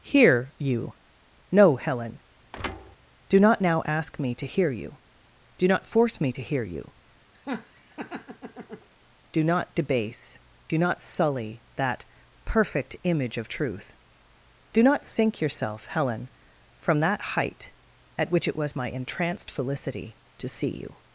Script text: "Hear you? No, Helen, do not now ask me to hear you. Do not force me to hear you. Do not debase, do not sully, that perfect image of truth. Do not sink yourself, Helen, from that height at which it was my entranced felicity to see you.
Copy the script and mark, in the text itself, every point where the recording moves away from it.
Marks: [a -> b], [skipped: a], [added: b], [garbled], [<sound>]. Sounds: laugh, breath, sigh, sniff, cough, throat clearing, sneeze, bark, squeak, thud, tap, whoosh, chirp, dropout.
"Hear you? No, Helen, [thud] do not now ask me to hear you. Do not force me to hear you. [laugh] Do not debase, do not sully, that perfect image of truth. Do not sink yourself, Helen, from that height at which it was my entranced felicity to see you.